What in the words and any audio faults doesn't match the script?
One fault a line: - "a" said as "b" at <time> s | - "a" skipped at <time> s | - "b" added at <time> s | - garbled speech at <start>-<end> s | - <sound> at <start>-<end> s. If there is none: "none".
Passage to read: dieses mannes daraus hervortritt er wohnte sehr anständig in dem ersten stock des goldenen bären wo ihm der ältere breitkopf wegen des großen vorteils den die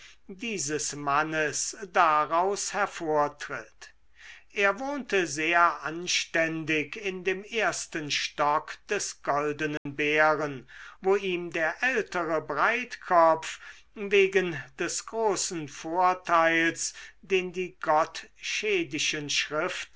- dropout at 9.8-9.9 s